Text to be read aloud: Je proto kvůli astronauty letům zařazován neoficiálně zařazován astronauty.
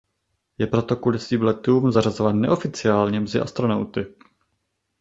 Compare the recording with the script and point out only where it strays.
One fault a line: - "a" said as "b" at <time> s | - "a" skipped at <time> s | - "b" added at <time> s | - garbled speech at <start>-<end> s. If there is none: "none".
- "astronauty" said as "svým" at 1.2 s
- "zařazován" said as "mezi" at 3.2 s